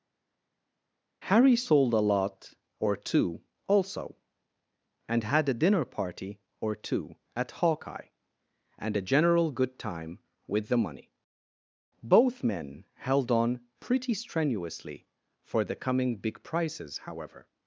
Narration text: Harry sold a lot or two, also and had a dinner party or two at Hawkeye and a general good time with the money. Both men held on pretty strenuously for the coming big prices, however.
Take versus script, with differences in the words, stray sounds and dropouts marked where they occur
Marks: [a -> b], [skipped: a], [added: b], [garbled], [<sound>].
Harry sold a lot or two, also and had a dinner party or two at Hawkeye and a general good time with the money. Both men held on pretty strenuously for the coming big prices, however.